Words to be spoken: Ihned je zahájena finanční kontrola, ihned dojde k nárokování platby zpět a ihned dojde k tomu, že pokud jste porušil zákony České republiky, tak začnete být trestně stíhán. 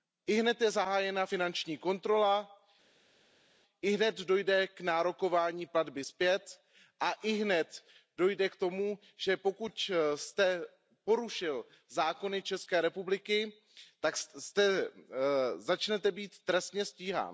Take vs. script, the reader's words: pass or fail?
pass